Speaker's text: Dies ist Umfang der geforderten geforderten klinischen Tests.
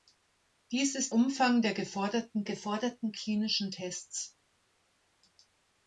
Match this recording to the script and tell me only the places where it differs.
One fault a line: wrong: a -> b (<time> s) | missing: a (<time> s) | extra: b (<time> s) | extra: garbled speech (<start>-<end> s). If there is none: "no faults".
no faults